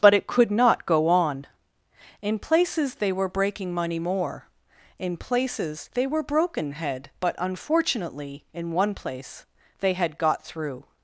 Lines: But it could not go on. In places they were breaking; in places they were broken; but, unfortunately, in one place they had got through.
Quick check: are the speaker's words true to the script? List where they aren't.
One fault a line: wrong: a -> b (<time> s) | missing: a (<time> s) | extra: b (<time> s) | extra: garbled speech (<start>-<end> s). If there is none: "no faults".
extra: money more (3.7 s)
extra: head (6.7 s)